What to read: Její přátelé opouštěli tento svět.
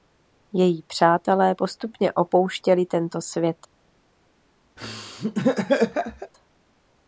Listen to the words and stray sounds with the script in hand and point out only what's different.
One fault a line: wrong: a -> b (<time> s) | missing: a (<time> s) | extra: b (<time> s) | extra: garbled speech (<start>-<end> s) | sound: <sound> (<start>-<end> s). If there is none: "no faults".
extra: postupně (1.5 s)
sound: laugh (4.8-6.3 s)